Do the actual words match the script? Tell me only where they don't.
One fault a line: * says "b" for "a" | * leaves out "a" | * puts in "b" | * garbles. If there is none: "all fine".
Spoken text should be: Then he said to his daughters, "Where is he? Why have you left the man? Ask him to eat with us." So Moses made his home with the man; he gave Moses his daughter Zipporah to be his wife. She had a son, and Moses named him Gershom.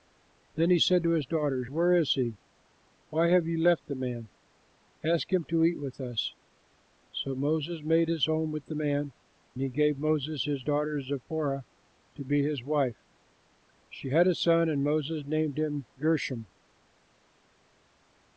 all fine